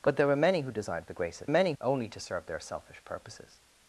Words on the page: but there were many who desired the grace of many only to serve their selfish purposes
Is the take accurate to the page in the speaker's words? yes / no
yes